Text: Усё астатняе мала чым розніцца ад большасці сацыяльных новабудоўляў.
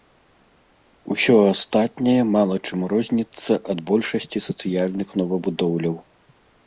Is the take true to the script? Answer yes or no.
yes